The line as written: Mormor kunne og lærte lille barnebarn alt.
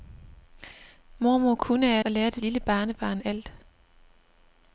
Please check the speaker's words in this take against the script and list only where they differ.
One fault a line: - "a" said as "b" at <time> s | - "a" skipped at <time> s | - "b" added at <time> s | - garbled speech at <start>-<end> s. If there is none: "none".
none